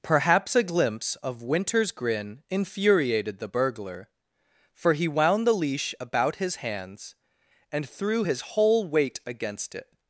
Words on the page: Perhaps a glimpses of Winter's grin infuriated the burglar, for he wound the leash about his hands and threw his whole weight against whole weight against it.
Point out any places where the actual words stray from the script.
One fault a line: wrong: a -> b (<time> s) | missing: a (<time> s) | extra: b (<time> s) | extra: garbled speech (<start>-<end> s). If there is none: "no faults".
wrong: glimpses -> glimpse (0.6 s)
missing: whole weight against (9.7 s)